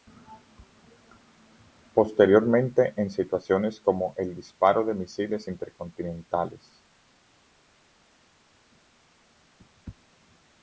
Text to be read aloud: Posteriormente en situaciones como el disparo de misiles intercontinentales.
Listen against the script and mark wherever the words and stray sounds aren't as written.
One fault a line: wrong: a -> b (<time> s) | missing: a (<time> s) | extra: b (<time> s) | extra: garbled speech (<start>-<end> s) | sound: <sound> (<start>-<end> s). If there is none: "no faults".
no faults